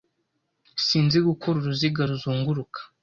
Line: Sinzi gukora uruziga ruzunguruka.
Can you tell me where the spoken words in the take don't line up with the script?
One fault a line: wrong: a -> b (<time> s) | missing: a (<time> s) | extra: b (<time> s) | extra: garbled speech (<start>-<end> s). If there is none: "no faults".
no faults